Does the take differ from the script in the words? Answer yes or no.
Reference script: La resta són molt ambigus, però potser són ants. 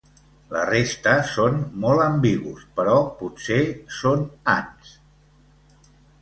no